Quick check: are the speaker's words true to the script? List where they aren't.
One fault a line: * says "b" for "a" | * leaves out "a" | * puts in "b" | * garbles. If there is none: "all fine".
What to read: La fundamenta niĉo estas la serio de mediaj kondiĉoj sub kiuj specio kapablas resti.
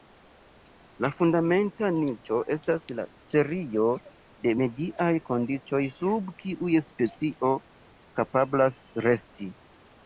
all fine